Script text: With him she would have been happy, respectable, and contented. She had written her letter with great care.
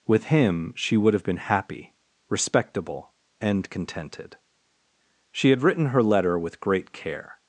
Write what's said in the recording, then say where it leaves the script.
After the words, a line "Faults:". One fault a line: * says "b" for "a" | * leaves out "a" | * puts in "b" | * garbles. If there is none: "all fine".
With him she would have been happy, respectable, and contented. She had written her letter with great care.
Faults:
all fine